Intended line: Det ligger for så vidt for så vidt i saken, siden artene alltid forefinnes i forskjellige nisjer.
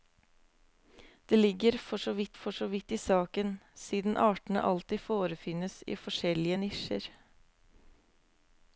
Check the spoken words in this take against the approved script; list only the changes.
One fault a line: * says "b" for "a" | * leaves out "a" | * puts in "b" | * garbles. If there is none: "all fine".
all fine